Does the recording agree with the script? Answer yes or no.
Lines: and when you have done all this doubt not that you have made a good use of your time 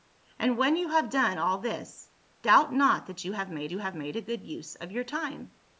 no